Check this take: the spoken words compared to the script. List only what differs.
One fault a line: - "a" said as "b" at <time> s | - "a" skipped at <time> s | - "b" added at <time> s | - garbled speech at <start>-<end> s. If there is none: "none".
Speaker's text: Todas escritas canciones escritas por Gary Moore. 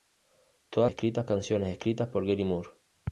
none